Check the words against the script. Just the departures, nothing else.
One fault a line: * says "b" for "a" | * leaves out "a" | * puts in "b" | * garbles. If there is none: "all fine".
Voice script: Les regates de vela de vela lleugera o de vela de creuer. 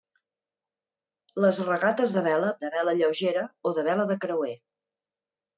all fine